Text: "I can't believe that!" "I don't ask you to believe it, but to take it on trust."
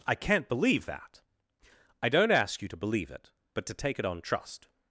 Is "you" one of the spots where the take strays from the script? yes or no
no